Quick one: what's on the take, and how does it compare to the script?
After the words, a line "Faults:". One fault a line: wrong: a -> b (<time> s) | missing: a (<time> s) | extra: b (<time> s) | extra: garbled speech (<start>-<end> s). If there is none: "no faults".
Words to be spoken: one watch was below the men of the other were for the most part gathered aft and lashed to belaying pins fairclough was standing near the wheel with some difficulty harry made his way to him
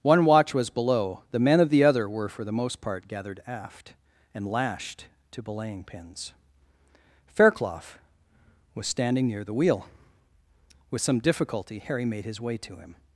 one watch was below the men of the other were for the most part gathered aft and lashed to belaying pins fairclough was standing near the wheel with some difficulty harry made his way to him
Faults:
no faults